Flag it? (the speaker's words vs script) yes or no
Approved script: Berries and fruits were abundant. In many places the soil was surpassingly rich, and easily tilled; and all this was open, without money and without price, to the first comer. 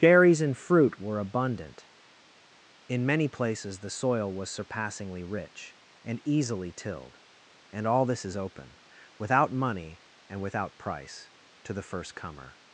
yes